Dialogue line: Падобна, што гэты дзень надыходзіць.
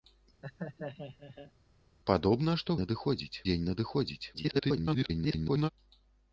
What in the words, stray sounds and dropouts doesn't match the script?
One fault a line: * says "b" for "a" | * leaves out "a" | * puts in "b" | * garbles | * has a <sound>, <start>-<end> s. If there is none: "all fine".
* has a laugh, 0.4-1.5 s
* says "надыходзіць" for "гэты"
* garbles